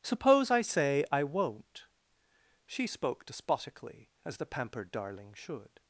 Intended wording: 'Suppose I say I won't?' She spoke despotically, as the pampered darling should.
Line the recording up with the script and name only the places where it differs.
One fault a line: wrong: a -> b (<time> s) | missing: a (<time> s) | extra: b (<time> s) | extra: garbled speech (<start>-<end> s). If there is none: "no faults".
no faults